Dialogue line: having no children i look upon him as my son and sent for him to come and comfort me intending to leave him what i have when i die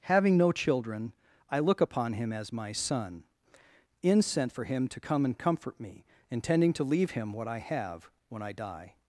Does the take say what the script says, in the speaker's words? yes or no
no